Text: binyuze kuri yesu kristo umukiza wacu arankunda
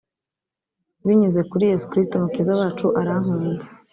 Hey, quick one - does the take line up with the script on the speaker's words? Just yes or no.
yes